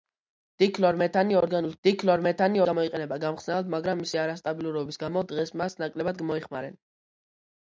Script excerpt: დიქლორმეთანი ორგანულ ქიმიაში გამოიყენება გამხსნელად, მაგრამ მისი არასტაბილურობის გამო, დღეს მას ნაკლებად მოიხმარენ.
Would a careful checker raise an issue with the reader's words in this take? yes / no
yes